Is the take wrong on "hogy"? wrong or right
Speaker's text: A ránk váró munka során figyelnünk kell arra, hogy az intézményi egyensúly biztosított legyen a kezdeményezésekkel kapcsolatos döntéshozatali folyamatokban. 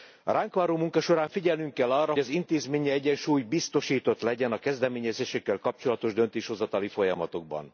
wrong